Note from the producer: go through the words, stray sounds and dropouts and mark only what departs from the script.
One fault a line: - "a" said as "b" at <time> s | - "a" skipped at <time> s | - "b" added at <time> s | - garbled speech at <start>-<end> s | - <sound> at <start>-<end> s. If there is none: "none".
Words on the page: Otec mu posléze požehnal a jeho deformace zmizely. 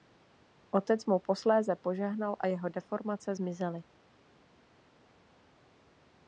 none